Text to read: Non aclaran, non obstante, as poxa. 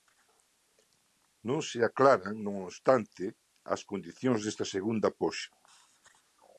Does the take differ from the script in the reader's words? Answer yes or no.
yes